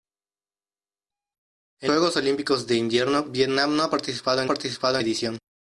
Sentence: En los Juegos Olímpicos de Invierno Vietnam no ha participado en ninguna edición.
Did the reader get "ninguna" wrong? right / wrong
wrong